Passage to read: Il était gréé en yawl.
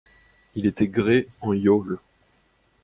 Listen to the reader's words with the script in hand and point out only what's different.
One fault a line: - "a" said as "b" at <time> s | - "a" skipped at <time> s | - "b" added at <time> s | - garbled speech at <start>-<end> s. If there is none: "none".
none